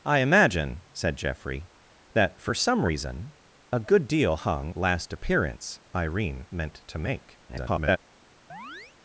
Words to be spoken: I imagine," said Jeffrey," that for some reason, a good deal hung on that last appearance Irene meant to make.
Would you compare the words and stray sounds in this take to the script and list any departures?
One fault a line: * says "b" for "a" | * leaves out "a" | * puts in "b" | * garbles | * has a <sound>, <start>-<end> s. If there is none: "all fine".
* leaves out "on that"
* garbles
* has a chirp, 8.5-9.0 s